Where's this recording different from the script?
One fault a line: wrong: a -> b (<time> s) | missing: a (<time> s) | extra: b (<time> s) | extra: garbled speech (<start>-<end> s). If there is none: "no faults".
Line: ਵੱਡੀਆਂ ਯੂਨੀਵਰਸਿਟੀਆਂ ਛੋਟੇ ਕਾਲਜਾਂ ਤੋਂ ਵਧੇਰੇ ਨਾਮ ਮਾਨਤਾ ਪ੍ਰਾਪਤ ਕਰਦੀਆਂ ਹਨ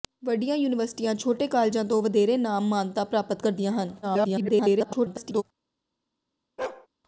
extra: garbled speech (4.0-5.4 s)